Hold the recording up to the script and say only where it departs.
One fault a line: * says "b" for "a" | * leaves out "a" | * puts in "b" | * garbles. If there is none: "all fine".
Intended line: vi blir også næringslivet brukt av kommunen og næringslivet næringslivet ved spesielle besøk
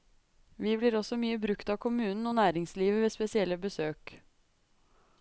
* says "mye" for "næringslivet"
* leaves out "næringslivet"